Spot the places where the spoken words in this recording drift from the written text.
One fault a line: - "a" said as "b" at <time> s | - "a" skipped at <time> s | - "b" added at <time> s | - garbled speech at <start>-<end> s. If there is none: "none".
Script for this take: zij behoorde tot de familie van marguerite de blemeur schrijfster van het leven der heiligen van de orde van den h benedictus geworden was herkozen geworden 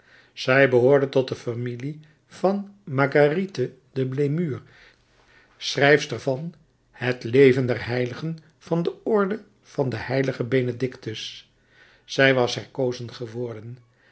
- "geworden" said as "zij" at 12.0 s